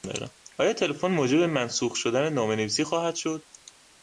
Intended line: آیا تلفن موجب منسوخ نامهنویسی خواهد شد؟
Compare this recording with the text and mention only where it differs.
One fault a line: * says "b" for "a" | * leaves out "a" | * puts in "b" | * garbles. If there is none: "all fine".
* puts in "شدن"